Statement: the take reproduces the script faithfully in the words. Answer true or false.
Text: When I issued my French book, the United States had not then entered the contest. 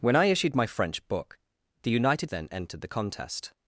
false